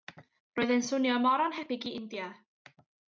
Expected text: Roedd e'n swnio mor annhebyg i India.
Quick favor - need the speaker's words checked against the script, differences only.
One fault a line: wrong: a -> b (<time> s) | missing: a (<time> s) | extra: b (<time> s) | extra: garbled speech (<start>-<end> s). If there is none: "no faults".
no faults